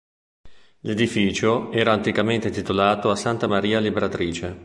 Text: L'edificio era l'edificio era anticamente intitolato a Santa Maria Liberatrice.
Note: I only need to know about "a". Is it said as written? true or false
true